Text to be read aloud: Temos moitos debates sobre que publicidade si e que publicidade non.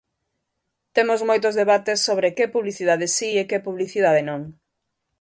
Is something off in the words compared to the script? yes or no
no